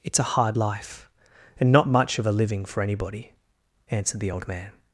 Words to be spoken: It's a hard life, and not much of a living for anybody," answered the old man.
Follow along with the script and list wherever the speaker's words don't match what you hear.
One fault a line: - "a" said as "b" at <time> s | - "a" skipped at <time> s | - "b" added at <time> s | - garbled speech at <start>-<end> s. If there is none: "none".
none